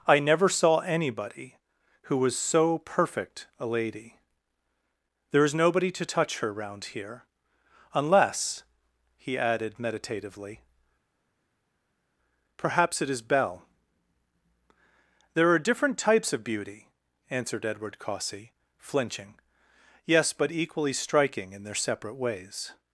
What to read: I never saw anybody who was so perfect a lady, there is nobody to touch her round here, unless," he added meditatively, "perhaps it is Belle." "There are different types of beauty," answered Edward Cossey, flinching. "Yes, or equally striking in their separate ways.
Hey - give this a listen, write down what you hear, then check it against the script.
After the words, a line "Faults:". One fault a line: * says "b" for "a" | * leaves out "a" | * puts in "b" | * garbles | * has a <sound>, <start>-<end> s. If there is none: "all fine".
I never saw anybody who was so perfect a lady, there is nobody to touch her round here, unless," he added meditatively, "perhaps it is Belle." "There are different types of beauty," answered Edward Cossey, flinching. "Yes, but equally striking in their separate ways.
Faults:
* says "but" for "or"